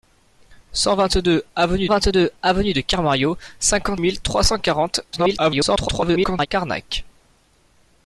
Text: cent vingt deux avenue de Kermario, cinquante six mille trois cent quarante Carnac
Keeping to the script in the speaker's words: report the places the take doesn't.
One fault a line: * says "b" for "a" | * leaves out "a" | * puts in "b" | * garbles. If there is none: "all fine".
* puts in "vingt deux avenue"
* leaves out "six"
* garbles